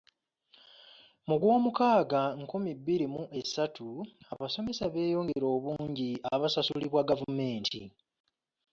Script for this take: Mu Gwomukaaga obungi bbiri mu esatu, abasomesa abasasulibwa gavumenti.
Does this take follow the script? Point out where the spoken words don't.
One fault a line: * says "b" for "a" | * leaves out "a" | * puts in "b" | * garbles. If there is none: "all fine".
* says "nkumi" for "obungi"
* puts in "beeyongera obungi"